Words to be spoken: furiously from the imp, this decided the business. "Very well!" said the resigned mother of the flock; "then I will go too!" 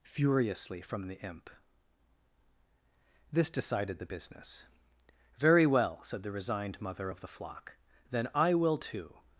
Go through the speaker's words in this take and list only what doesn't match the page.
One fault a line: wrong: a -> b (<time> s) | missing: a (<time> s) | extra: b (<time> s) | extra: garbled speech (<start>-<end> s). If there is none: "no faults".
missing: go (8.8 s)